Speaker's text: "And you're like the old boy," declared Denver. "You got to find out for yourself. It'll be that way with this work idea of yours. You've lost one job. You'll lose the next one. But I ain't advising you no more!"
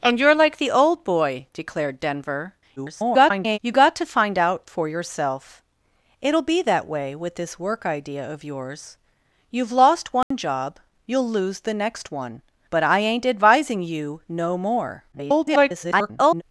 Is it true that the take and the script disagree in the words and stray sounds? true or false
true